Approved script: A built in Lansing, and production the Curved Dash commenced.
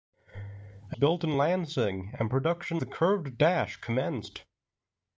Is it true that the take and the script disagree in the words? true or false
false